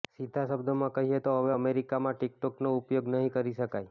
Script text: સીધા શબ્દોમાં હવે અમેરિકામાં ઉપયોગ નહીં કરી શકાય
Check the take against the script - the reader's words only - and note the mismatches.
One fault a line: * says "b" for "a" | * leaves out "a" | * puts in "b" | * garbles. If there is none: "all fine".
* puts in "કહીએ તો"
* puts in "ટિકટોકનો"